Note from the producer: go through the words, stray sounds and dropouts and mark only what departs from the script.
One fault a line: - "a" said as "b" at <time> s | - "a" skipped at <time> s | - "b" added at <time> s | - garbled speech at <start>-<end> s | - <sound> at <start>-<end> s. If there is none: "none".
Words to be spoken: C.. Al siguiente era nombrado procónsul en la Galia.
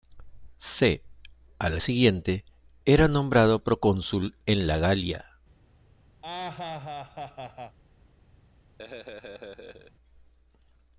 - laugh at 6.2-7.8 s
- laugh at 8.8-9.9 s